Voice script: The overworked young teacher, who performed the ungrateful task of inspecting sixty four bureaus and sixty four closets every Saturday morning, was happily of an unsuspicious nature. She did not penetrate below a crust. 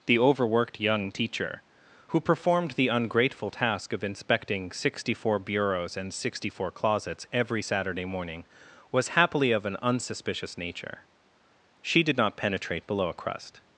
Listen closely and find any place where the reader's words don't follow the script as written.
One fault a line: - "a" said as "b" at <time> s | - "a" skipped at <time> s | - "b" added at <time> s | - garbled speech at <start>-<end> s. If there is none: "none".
none